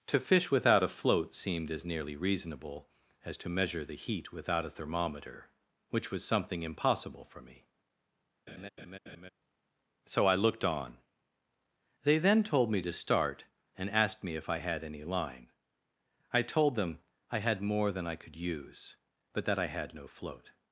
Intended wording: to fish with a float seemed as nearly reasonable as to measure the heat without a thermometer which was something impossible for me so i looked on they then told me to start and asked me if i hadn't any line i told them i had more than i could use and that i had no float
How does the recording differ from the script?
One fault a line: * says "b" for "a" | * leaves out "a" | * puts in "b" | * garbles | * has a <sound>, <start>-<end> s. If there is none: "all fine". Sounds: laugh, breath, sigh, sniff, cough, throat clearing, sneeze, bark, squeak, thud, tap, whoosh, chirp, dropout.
* says "without" for "with"
* has a laugh, 8.5-9.3 s
* says "had" for "hadn't"
* says "but" for "and"